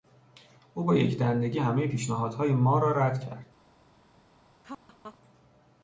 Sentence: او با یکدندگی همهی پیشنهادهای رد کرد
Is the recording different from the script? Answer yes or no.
yes